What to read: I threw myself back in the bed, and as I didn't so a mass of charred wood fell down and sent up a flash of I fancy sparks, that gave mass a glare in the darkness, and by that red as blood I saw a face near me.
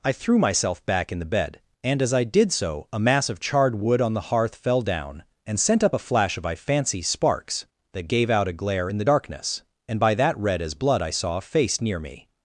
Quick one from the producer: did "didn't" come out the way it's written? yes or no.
no